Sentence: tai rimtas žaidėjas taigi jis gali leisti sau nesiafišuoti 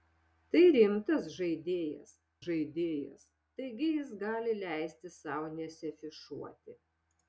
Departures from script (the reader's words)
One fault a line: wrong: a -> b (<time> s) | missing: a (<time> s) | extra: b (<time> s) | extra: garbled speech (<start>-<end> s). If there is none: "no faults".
extra: žaidėjas (2.4 s)